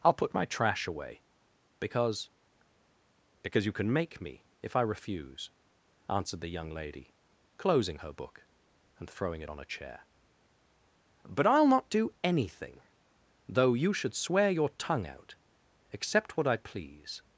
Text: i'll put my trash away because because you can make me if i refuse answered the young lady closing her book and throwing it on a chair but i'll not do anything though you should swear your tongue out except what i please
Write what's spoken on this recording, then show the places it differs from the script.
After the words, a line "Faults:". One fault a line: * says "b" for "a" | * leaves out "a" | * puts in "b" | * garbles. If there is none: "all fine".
i'll put my trash away because because you can make me if i refuse answered the young lady closing her book and throwing it on a chair but i'll not do anything though you should swear your tongue out except what i please
Faults:
all fine